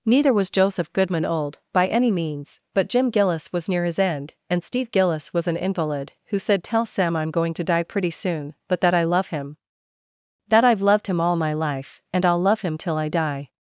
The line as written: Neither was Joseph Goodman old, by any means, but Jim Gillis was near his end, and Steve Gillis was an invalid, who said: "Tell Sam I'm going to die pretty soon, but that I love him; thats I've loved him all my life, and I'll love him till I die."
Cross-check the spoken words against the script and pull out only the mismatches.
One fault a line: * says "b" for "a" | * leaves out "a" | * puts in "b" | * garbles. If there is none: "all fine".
* says "that" for "thats"